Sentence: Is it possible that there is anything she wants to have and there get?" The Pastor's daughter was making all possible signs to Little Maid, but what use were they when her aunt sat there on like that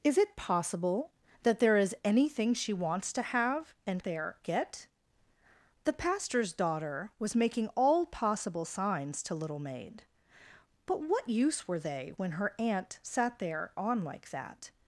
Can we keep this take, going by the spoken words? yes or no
yes